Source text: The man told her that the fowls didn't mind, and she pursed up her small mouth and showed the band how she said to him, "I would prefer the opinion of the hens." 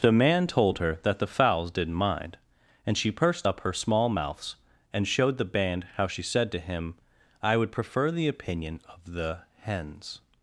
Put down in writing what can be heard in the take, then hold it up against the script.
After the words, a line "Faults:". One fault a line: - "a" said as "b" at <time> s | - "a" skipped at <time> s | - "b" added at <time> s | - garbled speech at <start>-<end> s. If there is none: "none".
The man told her that the fowls didn't mind, and she pursed up her small mouths and showed the band how she said to him, "I would prefer the opinion of the hens."
Faults:
- "mouth" said as "mouths" at 4.1 s